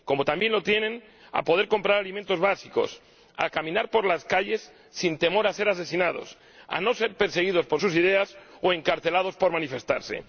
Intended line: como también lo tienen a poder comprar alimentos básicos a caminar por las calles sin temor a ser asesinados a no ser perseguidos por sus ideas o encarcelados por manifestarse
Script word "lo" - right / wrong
right